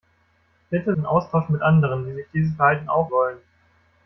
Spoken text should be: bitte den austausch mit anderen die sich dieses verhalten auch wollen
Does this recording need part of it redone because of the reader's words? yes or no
no